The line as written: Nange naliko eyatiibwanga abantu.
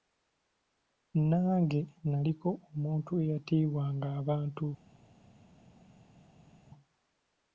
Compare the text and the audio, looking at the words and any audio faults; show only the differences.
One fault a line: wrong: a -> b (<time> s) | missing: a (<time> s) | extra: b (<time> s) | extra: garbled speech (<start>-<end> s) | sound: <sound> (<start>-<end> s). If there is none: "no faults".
extra: omuntu (2.7 s)